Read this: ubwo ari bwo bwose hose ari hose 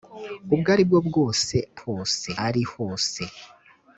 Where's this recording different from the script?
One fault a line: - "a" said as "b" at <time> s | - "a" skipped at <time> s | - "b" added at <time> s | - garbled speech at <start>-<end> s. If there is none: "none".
none